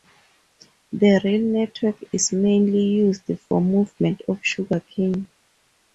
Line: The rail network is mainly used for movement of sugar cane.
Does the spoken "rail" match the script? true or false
true